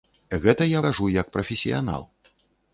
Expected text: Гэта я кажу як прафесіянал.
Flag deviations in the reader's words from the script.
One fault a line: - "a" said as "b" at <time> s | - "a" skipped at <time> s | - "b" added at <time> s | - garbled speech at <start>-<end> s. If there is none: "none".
none